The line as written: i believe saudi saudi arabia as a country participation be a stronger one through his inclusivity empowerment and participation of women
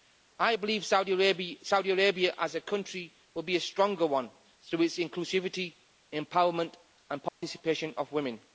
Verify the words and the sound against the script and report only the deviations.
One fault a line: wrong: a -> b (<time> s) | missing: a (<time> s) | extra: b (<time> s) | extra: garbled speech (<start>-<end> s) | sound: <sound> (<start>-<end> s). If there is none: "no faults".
missing: saudi (1.1 s)
wrong: participation -> will (3.3 s)
wrong: his -> its (4.8 s)
sound: dropout (7.3-7.4 s)